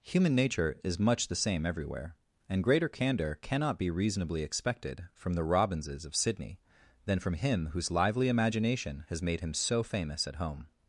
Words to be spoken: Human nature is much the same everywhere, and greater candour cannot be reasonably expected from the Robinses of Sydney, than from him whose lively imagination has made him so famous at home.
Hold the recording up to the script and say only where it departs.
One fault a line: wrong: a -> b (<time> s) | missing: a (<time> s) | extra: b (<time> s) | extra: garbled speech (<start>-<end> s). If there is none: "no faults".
no faults